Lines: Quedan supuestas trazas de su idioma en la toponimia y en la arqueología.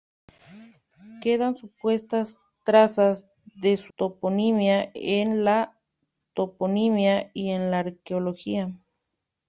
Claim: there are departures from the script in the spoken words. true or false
true